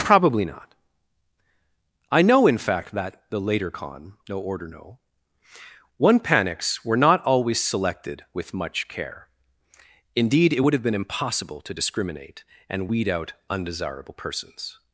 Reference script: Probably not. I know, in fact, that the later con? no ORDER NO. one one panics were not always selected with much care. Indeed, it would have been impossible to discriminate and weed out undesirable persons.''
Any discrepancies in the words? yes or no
yes